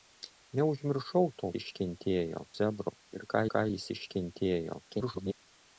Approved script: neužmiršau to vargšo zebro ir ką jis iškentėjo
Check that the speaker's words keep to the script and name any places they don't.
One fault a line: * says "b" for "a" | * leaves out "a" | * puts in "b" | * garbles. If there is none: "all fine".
* says "iškentėjo" for "vargšo"
* puts in "ką"
* garbles